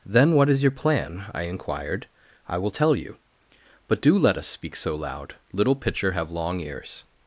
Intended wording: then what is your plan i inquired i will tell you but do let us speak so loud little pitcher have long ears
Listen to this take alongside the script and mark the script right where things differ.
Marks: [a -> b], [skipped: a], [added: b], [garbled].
then what is your plan i inquired i will tell you but do let us speak so loud little pitcher have long ears